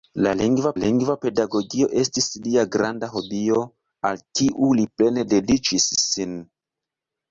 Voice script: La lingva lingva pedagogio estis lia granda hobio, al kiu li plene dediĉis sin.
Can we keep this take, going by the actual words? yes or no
yes